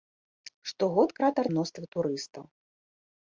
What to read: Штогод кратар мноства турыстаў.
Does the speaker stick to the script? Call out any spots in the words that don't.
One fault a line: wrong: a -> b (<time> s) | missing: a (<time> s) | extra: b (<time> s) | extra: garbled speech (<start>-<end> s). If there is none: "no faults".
no faults